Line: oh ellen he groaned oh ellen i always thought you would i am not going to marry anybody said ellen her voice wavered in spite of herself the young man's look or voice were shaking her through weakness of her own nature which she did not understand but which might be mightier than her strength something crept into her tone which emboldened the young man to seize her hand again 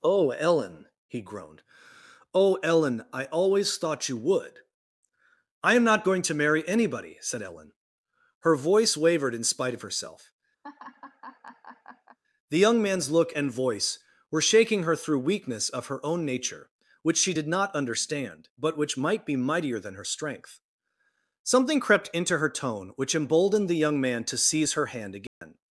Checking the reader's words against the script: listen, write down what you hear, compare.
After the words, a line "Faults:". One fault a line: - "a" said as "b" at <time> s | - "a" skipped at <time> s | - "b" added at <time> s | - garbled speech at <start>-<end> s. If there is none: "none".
oh ellen he groaned oh ellen i always thought you would i am not going to marry anybody said ellen her voice wavered in spite of herself the young man's look and voice were shaking her through weakness of her own nature which she did not understand but which might be mightier than her strength something crept into her tone which emboldened the young man to seize her hand again
Faults:
- "or" said as "and" at 13.3 s